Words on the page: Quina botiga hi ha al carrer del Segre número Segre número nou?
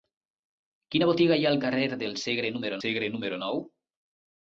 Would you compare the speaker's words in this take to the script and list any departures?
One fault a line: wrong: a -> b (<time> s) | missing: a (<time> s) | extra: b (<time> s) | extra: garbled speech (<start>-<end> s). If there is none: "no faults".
no faults